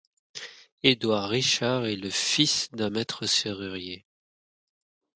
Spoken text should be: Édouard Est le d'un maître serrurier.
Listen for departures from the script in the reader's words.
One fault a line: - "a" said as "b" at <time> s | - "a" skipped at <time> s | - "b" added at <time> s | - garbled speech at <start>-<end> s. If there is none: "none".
- "Richard" added at 1.3 s
- "fils" added at 2.1 s